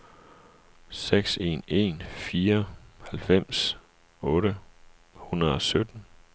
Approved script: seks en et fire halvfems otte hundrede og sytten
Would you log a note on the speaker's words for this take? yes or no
yes